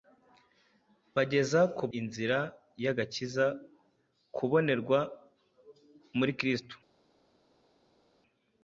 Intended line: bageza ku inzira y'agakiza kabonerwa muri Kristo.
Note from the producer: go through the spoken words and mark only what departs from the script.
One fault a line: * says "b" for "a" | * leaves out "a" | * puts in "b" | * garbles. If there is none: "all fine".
all fine